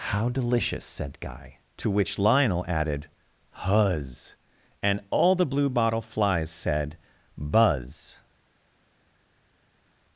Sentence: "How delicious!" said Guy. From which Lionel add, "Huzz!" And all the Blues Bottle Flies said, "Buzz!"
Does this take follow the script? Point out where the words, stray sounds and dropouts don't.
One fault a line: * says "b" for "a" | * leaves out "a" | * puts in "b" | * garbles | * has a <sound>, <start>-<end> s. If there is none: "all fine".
* says "To" for "From"
* says "added" for "add"
* says "Blue" for "Blues"